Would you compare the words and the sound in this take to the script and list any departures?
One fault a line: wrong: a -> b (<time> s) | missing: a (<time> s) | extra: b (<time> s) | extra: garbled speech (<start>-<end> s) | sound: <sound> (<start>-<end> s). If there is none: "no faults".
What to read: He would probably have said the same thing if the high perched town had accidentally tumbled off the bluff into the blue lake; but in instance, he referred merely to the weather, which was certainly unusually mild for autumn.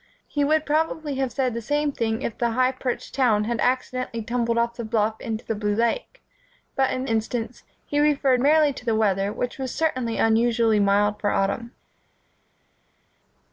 no faults